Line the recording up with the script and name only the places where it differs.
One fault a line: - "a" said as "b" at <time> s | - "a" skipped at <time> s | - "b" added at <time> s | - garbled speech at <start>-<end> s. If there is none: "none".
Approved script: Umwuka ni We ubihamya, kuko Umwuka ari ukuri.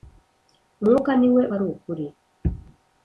- "ubihamya kuko Umwuka" skipped at 1.4 s